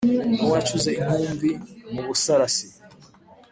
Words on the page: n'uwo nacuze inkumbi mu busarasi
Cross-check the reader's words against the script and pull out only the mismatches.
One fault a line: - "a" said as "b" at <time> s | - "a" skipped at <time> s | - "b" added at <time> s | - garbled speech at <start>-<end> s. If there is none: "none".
none